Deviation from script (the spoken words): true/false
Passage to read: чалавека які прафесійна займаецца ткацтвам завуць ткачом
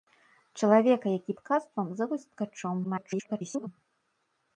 true